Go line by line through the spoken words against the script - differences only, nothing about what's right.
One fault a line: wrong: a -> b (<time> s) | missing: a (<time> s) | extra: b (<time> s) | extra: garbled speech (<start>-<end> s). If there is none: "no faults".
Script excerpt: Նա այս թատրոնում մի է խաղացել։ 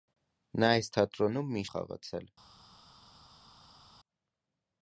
no faults